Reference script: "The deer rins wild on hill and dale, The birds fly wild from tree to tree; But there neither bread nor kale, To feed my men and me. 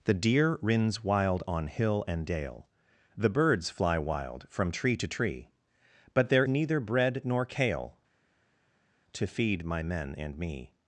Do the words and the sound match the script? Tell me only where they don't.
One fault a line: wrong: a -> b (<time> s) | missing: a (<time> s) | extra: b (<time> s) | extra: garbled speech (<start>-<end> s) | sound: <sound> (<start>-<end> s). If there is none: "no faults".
no faults